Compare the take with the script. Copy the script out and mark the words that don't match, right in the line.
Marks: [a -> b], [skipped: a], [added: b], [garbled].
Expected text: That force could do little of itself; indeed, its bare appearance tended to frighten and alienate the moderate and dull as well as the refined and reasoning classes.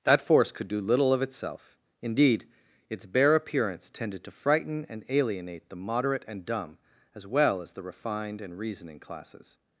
That force could do little of itself; indeed, its bare appearance tended to frighten and alienate the moderate and [dull -> dumb] as well as the refined and reasoning classes.